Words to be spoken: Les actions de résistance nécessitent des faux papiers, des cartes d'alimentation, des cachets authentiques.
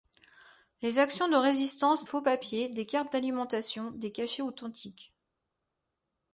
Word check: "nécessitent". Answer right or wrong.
wrong